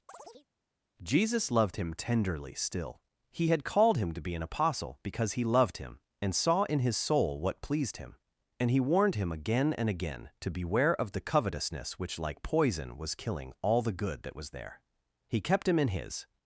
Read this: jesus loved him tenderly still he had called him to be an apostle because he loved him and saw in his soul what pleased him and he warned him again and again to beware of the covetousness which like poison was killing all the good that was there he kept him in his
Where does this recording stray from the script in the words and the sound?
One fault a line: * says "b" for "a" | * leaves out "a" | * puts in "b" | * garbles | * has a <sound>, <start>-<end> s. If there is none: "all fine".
* has a chirp, 0.1-0.5 s